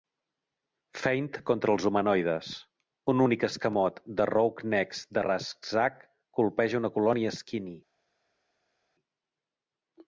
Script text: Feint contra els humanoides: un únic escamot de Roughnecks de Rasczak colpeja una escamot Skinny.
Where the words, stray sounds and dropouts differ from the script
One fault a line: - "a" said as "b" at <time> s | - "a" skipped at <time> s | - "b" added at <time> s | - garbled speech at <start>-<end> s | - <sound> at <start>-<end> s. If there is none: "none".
- "escamot" said as "colònia" at 7.0 s